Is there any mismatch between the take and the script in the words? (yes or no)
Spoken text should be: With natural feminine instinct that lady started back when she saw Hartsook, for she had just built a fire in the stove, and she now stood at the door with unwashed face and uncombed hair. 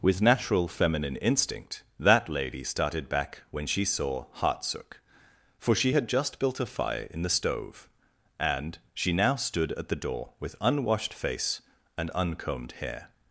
no